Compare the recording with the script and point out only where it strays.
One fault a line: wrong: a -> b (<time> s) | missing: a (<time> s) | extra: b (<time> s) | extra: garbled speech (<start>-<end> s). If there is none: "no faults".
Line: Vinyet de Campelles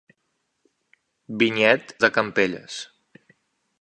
no faults